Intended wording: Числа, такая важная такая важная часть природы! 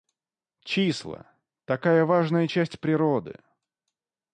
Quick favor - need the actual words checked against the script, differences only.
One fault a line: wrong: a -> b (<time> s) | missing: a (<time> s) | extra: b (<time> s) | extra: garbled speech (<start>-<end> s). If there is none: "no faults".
missing: такая важная (2.5 s)